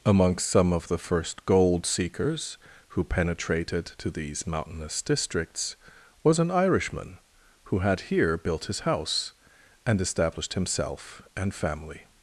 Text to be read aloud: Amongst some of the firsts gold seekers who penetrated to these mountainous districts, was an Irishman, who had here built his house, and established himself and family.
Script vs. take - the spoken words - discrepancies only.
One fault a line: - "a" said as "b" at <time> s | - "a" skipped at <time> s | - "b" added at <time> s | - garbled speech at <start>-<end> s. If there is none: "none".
- "firsts" said as "first" at 1.0 s